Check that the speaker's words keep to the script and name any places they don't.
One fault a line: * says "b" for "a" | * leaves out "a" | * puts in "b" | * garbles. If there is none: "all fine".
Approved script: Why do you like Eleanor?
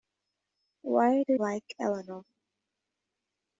* leaves out "you"